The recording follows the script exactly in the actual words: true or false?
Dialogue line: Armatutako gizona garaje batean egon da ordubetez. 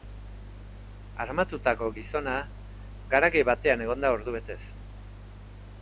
true